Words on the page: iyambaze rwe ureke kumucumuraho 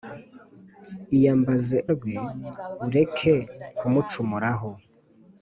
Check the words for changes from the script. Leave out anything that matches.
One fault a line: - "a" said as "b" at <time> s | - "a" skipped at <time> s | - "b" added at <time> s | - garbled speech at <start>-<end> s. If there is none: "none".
none